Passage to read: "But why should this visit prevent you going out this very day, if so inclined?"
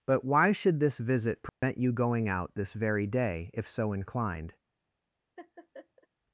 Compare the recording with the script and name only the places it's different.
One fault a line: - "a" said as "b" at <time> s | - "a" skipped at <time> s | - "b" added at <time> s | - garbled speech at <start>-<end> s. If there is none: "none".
none